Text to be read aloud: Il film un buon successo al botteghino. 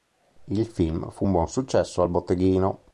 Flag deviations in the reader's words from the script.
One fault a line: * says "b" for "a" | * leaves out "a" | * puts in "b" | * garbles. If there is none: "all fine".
* puts in "fu"